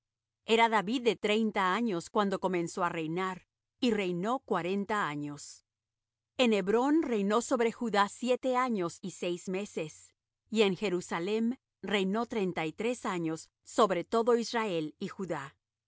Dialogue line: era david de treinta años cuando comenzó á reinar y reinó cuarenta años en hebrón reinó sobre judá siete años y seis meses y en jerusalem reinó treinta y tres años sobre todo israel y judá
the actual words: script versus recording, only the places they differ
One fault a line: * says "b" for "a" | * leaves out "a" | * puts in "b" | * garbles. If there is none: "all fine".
all fine